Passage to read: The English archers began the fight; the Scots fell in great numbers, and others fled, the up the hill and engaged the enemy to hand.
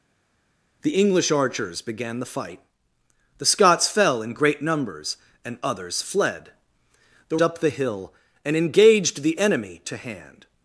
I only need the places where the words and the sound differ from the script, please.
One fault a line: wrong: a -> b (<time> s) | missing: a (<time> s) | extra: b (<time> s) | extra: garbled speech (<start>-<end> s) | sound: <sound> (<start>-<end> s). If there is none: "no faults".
no faults